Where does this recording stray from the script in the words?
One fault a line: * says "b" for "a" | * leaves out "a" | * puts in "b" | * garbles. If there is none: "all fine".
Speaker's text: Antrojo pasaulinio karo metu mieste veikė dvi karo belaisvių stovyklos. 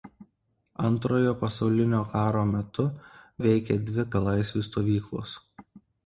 * leaves out "mieste"
* leaves out "karo"